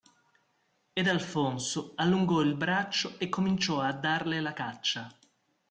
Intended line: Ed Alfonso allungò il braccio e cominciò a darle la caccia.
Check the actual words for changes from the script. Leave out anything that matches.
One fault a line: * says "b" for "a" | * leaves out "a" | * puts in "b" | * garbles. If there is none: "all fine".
all fine